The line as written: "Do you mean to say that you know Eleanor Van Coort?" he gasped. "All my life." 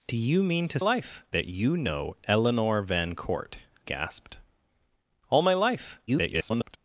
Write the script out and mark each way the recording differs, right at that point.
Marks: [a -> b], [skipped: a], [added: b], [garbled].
"Do you mean to [say -> life] that you know Eleanor Van Coort?" [skipped: he] gasped. "All my life." [garbled]